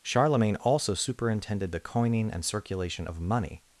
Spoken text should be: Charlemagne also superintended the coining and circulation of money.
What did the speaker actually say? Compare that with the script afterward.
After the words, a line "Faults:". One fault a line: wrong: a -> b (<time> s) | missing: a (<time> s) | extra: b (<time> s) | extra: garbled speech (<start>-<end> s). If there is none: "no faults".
Charlemagne also superintended the coining and circulation of money.
Faults:
no faults